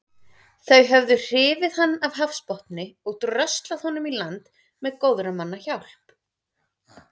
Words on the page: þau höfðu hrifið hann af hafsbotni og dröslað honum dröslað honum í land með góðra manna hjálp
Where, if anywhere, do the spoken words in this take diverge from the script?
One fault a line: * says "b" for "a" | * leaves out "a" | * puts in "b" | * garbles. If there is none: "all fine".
* leaves out "dröslað honum"